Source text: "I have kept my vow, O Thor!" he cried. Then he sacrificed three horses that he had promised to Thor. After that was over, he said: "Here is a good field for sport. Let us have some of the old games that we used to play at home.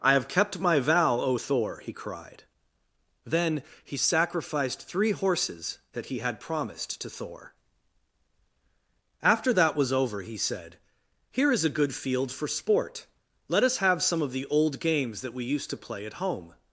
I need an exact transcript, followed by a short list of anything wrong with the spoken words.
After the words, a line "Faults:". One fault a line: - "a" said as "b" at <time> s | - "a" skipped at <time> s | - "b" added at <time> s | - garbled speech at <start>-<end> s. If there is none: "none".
"I have kept my vow, O Thor!" he cried. Then he sacrificed three horses that he had promised to Thor. After that was over, he said: "Here is a good field for sport. Let us have some of the old games that we used to play at home.
Faults:
none